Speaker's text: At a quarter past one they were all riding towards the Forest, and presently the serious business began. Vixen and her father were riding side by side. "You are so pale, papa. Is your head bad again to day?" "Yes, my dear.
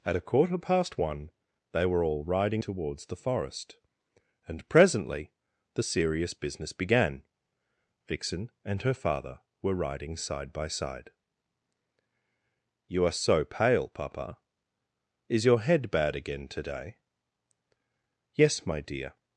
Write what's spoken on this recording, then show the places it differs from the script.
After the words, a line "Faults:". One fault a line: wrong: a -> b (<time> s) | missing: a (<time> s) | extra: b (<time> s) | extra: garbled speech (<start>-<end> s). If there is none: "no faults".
At a quarter past one they were all riding towards the Forest, and presently the serious business began. Vixen and her father were riding side by side. "You are so pale, papa. Is your head bad again to day?" "Yes, my dear.
Faults:
no faults